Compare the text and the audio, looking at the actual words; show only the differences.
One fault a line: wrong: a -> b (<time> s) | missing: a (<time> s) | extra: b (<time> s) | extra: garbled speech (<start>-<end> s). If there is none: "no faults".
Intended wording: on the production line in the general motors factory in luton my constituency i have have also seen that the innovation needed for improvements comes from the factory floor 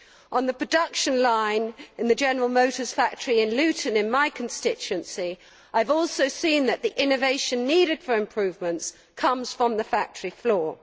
extra: in (4.0 s)
missing: have (5.9 s)